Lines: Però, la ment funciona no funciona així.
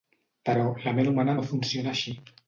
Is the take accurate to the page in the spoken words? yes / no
no